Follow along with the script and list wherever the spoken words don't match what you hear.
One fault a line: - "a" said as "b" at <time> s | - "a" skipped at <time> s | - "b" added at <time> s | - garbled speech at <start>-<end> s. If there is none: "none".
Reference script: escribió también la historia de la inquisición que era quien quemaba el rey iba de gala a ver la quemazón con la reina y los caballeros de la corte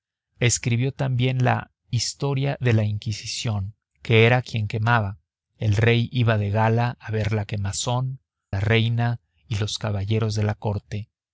- "con" skipped at 8.2 s